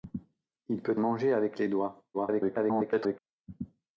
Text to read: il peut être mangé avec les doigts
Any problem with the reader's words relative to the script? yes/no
yes